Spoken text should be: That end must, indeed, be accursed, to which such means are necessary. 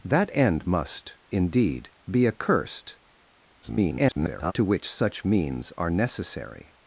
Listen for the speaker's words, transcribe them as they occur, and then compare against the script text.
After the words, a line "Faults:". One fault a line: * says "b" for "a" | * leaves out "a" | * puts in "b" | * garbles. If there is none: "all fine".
That end must, indeed, be accursed, [garbled] to which such means are necessary.
Faults:
* garbles